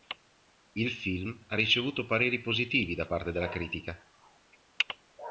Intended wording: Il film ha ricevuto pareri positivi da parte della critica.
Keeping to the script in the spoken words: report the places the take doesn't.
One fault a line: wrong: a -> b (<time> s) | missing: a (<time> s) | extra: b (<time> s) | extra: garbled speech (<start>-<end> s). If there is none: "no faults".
no faults